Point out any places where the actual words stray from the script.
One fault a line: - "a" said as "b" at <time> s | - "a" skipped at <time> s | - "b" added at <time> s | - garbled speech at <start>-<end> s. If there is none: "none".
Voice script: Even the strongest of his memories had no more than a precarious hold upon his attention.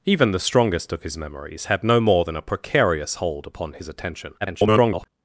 - garbled speech at 4.4-5.1 s